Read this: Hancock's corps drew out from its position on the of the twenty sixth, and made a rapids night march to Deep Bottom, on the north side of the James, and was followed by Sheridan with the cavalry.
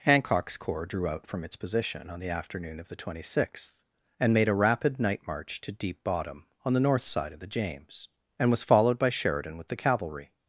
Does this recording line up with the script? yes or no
no